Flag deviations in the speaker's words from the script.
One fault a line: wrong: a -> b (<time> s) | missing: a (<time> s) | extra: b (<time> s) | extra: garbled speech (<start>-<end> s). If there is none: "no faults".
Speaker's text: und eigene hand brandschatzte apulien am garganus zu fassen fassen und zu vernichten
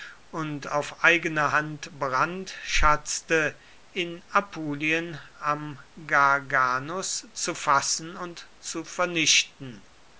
extra: auf (0.7 s)
extra: in (3.9 s)
missing: fassen (8.1 s)